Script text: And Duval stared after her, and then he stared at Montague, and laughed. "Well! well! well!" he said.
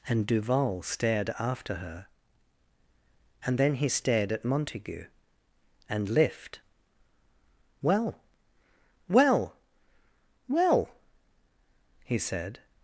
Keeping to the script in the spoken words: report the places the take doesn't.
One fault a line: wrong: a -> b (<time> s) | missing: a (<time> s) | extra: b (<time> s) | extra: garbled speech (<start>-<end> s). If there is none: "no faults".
wrong: laughed -> lift (6.1 s)